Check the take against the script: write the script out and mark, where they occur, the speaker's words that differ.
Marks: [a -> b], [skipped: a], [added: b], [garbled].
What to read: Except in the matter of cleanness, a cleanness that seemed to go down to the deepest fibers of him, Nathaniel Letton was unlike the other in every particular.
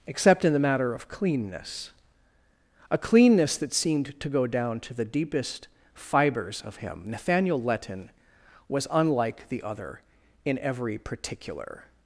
Except in the matter of cleanness, a cleanness that seemed to go down to the deepest fibers of him, Nathaniel Letton was unlike the other in every particular.